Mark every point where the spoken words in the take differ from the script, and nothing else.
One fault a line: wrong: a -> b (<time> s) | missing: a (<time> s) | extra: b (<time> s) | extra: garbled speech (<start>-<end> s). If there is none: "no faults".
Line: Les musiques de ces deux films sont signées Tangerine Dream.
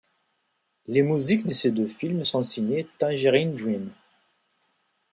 no faults